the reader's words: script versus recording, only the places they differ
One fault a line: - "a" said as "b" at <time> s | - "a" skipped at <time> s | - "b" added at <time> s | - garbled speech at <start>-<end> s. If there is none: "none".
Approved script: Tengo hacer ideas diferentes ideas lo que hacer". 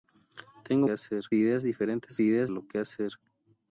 none